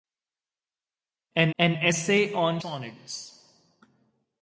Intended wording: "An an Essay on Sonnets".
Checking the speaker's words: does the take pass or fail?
pass